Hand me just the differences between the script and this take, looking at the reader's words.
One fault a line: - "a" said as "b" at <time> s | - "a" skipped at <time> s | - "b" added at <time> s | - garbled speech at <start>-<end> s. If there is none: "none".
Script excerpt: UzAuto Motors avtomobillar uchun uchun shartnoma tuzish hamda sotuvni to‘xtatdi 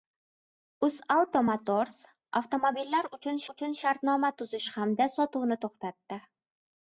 none